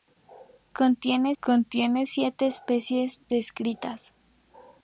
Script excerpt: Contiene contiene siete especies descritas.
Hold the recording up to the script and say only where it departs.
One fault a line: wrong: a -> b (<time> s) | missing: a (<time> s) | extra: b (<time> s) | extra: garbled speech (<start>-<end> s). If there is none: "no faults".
no faults